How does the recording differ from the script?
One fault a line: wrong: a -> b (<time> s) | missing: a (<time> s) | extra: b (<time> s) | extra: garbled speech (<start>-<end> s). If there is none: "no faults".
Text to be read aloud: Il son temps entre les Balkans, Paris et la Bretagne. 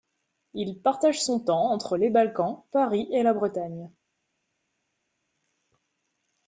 extra: partage (0.8 s)